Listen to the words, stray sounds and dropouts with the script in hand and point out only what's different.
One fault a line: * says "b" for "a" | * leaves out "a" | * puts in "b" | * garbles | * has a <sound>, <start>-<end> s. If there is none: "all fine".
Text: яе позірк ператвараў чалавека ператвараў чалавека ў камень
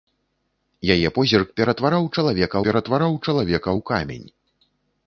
all fine